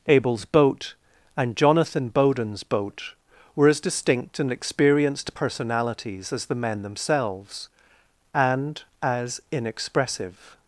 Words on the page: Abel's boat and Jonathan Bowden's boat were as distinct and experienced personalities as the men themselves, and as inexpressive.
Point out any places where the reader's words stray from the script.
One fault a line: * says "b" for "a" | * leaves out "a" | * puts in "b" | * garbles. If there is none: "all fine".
all fine